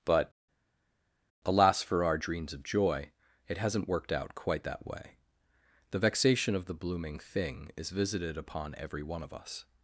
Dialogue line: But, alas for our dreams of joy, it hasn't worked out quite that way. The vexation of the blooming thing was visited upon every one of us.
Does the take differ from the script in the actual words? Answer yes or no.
yes